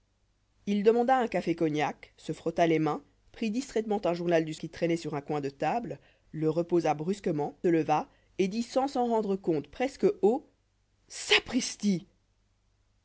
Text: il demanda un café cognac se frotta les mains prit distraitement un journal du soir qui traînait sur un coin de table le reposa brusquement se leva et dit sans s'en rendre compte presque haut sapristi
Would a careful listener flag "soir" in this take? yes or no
yes